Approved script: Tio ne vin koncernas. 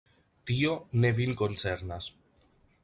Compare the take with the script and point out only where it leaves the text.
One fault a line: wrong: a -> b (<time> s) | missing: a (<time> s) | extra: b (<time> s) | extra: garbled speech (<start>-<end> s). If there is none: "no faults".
no faults